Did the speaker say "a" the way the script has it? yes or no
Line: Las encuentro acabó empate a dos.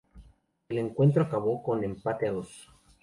yes